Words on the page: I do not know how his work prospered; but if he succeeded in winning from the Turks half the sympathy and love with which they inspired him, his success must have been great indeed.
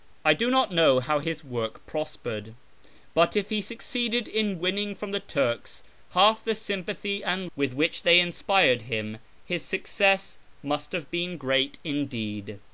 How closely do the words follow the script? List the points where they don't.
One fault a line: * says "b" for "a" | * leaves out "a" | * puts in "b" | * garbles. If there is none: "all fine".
* leaves out "love"